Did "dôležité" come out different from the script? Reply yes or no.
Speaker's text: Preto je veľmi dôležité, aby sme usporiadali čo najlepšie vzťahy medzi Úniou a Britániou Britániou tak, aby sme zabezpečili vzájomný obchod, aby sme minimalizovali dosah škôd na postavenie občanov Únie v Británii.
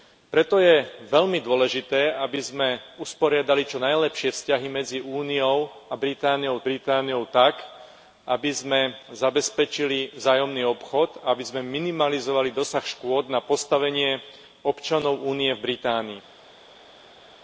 no